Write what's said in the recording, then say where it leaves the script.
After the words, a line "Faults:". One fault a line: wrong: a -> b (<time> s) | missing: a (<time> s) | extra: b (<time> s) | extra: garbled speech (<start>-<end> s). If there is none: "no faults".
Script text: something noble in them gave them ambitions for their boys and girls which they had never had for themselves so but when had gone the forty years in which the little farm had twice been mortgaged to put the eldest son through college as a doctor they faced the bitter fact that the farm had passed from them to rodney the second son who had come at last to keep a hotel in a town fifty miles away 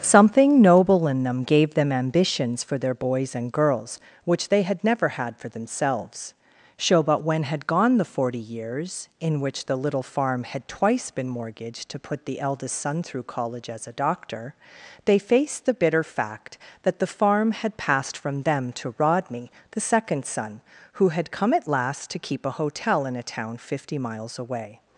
something noble in them gave them ambitions for their boys and girls which they had never had for themselves so but when had gone the forty years in which the little farm had twice been mortgaged to put the eldest son through college as a doctor they faced the bitter fact that the farm had passed from them to rodney the second son who had come at last to keep a hotel in a town fifty miles away
Faults:
no faults